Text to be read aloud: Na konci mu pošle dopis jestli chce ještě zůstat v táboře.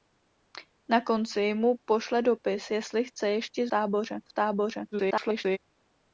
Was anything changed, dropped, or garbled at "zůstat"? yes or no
yes